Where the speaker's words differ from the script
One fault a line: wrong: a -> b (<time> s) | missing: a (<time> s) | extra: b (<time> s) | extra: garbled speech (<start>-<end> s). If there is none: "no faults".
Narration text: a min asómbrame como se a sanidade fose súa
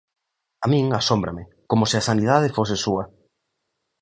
no faults